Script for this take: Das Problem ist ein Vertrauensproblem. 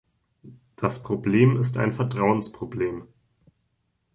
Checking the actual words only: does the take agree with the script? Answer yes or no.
yes